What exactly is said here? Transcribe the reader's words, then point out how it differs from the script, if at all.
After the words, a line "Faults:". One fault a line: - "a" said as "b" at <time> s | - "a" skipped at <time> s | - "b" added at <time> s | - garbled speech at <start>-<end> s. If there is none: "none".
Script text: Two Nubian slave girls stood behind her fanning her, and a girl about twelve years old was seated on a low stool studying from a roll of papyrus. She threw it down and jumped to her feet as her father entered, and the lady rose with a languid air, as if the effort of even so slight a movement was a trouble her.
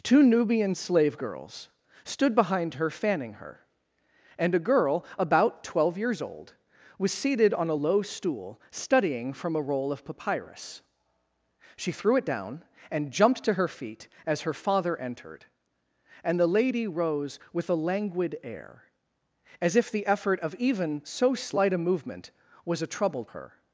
Two Nubian slave girls stood behind her fanning her, and a girl about twelve years old was seated on a low stool studying from a roll of papyrus. She threw it down and jumped to her feet as her father entered, and the lady rose with a languid air, as if the effort of even so slight a movement was a trouble her.
Faults:
none